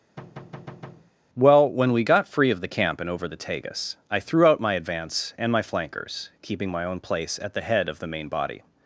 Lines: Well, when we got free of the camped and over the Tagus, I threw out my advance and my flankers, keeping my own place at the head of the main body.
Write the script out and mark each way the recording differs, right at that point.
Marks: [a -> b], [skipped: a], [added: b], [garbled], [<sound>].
[thud] Well, when we got free of the [camped -> camp] and over the Tagus, I threw out my advance and my flankers, keeping my own place at the head of the main body.